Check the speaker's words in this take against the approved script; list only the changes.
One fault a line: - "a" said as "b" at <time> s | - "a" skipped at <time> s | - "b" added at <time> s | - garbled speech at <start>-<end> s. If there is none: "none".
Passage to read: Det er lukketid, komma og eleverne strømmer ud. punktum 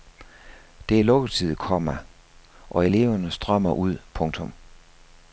none